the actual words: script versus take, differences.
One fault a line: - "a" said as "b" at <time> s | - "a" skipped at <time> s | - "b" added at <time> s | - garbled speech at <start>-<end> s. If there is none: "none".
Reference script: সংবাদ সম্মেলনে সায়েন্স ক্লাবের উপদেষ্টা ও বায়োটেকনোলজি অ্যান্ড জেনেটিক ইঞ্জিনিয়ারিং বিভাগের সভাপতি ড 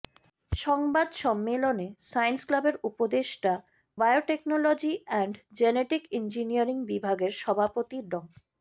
- "ও" skipped at 3.5 s